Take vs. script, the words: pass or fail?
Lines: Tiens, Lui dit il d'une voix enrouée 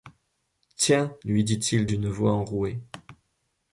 pass